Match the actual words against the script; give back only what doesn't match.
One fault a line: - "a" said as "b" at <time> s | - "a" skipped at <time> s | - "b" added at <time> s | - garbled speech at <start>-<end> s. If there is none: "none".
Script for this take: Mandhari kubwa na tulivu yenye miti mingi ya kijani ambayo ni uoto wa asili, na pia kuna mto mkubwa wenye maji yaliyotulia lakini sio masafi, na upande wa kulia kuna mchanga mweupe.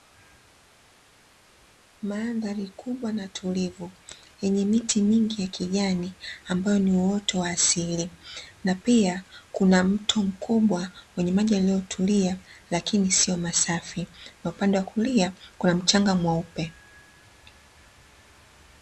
none